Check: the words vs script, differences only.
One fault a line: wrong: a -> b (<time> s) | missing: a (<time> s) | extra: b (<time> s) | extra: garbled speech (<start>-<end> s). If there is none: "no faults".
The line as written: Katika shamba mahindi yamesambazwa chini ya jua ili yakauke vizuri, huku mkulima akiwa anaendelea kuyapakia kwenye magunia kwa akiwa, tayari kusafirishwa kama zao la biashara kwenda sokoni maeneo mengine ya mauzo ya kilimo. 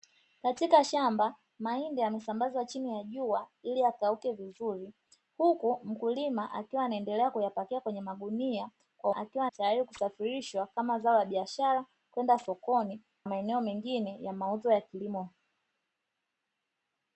no faults